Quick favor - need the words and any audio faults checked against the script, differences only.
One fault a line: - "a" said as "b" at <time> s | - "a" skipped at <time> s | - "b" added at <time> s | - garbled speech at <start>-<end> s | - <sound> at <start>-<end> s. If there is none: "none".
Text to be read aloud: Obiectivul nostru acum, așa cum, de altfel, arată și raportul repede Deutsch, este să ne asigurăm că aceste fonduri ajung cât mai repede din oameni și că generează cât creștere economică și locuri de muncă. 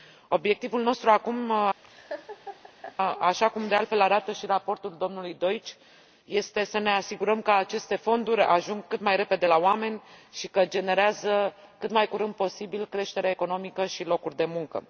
- laugh at 1.8-3.0 s
- "repede" said as "domnului" at 5.0 s
- "din" said as "la" at 9.4 s
- "mai curând posibil" added at 11.9 s